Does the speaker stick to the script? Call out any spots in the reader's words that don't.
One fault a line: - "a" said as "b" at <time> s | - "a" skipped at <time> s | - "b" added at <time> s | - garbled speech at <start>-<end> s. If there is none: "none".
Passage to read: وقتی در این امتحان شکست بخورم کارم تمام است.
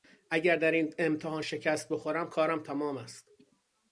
- "وقتی" said as "اگر" at 0.3 s